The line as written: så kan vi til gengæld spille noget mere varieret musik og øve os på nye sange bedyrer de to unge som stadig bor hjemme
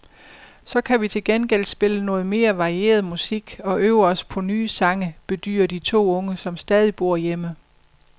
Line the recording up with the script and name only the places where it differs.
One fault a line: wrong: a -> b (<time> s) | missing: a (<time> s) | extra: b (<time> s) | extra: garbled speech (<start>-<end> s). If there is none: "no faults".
no faults